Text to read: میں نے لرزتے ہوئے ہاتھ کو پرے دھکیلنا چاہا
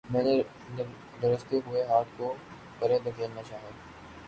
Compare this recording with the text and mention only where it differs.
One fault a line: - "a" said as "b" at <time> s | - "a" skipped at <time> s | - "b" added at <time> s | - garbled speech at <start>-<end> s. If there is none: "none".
none